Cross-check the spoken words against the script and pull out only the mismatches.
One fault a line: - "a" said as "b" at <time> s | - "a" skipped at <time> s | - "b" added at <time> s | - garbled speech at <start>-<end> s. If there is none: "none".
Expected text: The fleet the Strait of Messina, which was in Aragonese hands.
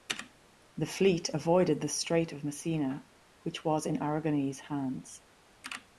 - "avoided" added at 1.3 s